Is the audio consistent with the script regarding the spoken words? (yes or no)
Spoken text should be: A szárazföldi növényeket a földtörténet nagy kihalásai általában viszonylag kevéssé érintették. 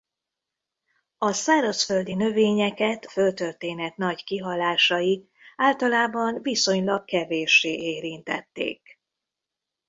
no